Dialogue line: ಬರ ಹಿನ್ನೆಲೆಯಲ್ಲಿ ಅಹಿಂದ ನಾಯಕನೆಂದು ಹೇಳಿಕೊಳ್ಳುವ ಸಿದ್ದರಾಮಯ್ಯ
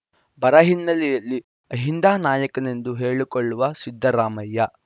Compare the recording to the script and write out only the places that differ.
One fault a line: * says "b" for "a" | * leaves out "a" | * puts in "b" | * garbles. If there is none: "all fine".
all fine